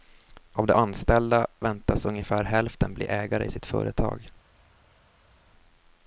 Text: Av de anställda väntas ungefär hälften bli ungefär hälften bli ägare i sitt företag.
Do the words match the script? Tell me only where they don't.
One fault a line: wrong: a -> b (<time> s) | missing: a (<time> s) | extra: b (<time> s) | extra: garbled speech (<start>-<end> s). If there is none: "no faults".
missing: ungefär hälften bli (3.1 s)